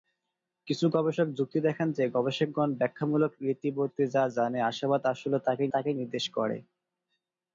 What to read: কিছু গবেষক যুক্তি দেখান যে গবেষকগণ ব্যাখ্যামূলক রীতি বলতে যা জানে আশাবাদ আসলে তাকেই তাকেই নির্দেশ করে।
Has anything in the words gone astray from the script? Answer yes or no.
no